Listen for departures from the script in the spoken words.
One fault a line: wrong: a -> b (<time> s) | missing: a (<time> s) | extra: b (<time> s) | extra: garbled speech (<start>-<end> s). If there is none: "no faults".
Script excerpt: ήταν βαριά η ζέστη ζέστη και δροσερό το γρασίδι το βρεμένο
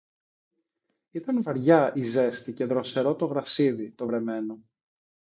missing: ζέστη (2.5 s)